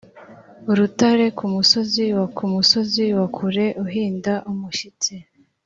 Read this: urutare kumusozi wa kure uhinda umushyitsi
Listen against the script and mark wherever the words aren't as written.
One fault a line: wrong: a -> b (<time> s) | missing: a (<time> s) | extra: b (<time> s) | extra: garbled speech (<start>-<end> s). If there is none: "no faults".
extra: kumusozi wa (2.4 s)